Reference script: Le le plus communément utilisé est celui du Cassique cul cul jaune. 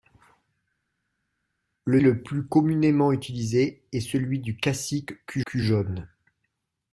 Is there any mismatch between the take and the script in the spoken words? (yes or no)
no